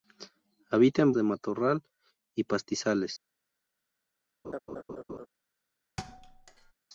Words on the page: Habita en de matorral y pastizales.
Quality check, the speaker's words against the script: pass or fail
pass